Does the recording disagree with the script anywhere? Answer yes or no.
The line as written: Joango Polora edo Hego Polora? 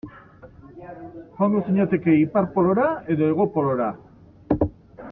yes